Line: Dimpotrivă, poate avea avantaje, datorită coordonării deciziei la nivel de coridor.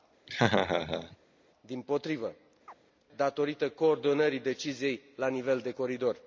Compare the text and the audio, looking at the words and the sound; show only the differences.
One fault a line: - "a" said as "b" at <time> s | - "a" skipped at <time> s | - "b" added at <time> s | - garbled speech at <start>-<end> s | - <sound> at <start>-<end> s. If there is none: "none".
- laugh at 0.3-1.2 s
- "poate avea avantaje" skipped at 2.3 s
- chirp at 2.7-2.8 s